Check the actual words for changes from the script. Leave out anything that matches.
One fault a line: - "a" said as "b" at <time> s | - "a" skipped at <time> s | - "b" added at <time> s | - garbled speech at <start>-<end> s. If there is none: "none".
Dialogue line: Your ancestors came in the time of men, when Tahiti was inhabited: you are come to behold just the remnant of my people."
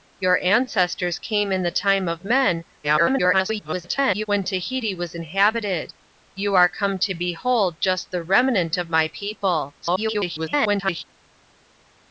- garbled speech at 2.8-4.3 s
- garbled speech at 9.8-11.0 s